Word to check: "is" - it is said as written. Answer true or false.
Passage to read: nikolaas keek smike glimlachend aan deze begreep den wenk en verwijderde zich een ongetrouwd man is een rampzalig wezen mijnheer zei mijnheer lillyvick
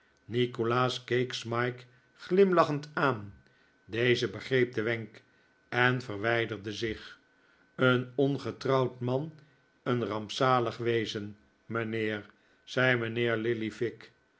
false